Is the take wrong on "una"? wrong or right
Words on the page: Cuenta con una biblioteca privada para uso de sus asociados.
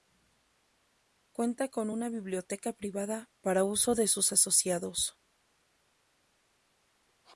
right